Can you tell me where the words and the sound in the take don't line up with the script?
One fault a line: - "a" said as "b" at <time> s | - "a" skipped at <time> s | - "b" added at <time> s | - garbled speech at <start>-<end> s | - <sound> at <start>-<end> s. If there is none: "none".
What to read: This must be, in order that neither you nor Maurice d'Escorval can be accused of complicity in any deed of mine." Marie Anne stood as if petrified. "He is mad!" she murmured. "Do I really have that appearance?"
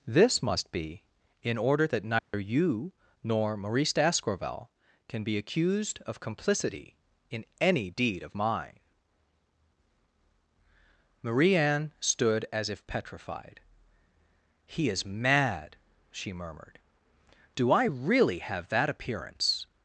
- dropout at 2.2-2.3 s